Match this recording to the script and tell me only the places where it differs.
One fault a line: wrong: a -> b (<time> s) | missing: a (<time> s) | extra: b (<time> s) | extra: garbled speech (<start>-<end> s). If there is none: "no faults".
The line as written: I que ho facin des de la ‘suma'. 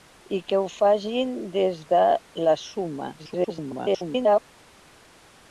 extra: garbled speech (3.2-4.4 s)